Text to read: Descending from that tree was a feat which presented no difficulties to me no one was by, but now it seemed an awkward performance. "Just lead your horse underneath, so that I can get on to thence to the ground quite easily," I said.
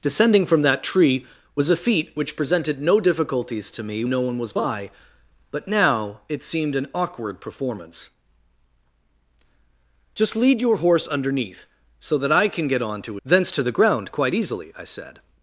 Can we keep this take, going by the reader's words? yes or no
yes